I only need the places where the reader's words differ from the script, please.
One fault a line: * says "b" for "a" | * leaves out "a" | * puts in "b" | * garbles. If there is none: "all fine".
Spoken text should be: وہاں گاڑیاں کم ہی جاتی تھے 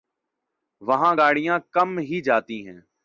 * says "ہیں" for "تھے"